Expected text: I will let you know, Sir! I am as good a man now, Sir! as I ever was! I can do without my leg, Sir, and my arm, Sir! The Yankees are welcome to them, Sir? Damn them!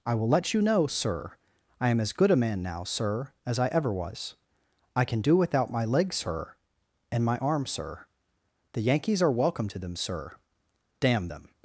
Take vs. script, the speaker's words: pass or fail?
pass